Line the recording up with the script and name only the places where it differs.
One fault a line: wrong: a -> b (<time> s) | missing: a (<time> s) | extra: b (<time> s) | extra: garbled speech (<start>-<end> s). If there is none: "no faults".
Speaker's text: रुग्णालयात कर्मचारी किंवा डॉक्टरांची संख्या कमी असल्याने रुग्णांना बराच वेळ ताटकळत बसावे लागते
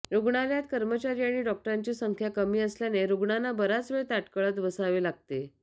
wrong: किंवा -> आणि (1.2 s)